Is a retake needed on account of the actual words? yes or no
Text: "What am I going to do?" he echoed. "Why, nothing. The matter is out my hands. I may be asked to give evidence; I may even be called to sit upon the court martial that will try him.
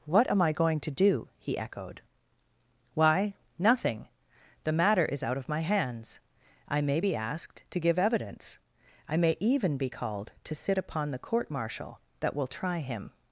yes